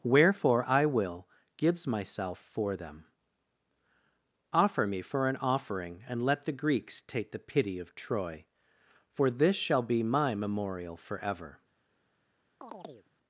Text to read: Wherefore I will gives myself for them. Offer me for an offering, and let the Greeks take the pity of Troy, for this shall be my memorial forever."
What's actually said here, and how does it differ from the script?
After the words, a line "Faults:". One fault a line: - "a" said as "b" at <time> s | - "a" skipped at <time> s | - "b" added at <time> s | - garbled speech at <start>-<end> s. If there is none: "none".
Wherefore I will gives myself for them. Offer me for an offering, and let the Greeks take the pity of Troy, for this shall be my memorial forever."
Faults:
none